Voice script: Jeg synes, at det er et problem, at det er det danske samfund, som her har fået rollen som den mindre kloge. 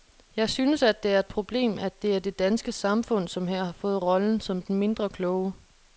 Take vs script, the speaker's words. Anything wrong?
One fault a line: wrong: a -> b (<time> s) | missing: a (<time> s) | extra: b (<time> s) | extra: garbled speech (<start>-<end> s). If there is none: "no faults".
no faults